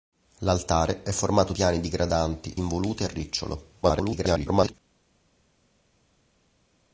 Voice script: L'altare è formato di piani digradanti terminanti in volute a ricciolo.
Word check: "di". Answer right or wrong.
wrong